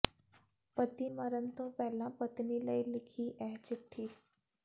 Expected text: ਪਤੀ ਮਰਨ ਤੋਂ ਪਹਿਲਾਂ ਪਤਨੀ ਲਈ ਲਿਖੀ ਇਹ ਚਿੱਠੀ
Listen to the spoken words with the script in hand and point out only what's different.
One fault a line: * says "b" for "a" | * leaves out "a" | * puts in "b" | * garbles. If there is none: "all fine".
all fine